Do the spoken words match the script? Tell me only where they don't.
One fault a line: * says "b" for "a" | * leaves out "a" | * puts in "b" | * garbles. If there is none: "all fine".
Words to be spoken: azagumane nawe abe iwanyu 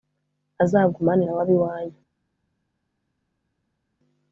all fine